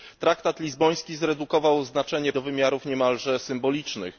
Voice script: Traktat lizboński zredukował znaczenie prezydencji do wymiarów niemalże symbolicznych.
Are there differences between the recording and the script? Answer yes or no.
yes